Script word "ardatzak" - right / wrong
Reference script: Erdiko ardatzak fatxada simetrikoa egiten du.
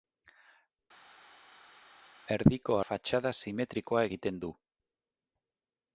wrong